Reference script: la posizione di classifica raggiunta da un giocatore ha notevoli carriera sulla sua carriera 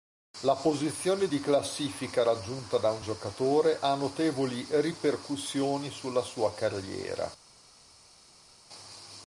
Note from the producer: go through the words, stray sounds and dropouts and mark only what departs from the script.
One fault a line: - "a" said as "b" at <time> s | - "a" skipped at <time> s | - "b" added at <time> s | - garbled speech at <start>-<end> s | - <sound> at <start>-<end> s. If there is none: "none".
- "carriera" said as "ripercussioni" at 4.7 s